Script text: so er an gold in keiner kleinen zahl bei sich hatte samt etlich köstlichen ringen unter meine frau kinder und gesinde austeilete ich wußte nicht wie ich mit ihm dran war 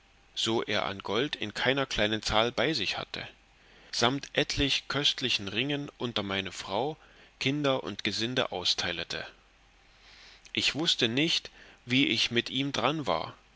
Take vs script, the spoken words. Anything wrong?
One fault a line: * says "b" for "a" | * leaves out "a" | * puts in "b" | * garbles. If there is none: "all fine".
all fine